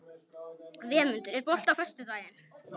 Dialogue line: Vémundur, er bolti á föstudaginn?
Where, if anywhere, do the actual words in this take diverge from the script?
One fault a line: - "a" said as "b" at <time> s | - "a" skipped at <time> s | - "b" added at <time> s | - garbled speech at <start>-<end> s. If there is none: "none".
none